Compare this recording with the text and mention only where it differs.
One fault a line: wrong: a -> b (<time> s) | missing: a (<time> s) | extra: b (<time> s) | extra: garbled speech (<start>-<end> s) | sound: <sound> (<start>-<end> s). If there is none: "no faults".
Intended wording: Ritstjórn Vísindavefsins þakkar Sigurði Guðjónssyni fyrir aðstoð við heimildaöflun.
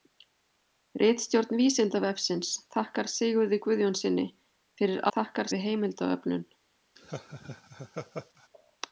wrong: aðstoð -> þakkar (5.2 s)
sound: laugh (7.0-8.5 s)